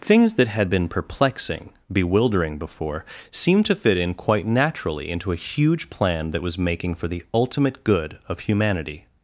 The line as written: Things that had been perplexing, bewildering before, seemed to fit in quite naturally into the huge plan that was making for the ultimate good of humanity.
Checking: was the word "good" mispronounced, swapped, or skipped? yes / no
no